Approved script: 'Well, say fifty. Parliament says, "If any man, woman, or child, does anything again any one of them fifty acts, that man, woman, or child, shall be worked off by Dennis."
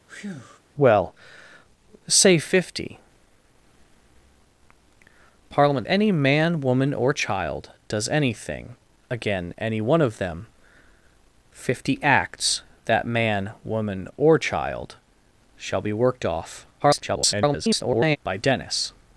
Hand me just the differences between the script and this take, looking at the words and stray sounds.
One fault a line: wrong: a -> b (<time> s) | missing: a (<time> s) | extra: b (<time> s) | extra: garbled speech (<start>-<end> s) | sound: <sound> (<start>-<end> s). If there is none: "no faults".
sound: breath (0.1-0.6 s)
missing: says If (5.9 s)
extra: garbled speech (16.8-18.2 s)